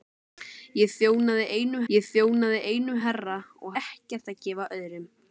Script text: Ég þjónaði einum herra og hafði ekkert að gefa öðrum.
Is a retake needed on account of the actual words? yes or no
yes